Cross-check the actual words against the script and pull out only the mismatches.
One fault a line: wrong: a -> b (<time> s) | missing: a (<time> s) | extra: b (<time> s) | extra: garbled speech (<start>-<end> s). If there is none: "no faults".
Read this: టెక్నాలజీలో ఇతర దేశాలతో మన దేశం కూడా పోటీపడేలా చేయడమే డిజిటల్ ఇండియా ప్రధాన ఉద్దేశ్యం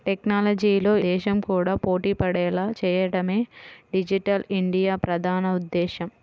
missing: ఇతర దేశాలతో మన (0.9 s)